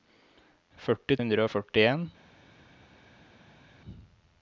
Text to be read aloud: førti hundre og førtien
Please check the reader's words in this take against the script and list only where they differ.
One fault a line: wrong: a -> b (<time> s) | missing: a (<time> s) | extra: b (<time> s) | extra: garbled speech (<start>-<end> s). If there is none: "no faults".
no faults